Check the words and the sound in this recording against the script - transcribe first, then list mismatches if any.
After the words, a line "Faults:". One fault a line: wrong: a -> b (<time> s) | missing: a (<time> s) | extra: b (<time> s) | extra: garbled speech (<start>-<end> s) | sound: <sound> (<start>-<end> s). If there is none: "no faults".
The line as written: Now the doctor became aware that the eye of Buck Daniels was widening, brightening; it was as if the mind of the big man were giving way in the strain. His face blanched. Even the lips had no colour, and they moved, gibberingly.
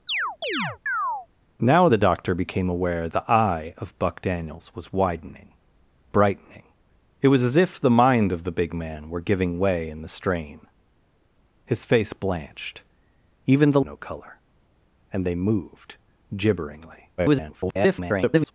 Now the doctor became aware the eye of Buck Daniels was widening, brightening; it was as if the mind of the big man were giving way in the strain. His face blanched. Even the no colour, and they moved, gibberingly. [garbled]
Faults:
sound: chirp (0.1-1.3 s)
missing: that (3.1 s)
missing: lips had (13.8 s)
extra: garbled speech (17.2-18.5 s)